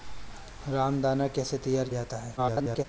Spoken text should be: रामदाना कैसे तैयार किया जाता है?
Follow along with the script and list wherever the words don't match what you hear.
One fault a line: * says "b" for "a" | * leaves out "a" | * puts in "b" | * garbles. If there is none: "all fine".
* leaves out "किया"
* garbles